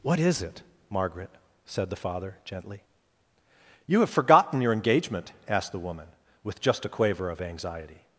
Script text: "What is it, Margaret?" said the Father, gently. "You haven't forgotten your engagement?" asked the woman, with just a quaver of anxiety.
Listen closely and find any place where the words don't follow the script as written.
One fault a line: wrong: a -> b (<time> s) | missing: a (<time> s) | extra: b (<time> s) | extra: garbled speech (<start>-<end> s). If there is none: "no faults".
wrong: haven't -> have (4.0 s)